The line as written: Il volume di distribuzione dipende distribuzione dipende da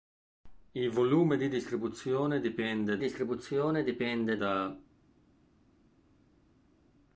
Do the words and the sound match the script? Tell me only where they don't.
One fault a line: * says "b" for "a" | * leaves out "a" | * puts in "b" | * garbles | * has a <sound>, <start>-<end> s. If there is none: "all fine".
all fine